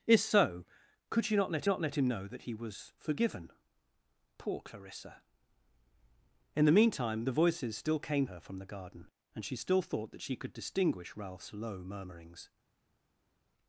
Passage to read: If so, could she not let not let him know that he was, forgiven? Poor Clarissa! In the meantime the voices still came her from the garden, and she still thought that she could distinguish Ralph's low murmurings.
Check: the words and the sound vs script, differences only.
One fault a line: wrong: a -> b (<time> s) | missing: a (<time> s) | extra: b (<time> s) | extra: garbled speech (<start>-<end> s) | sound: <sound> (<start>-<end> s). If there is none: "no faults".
no faults